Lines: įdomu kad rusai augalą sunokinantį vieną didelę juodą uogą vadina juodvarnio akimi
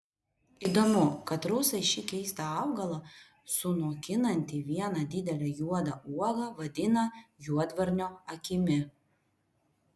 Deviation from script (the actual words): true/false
true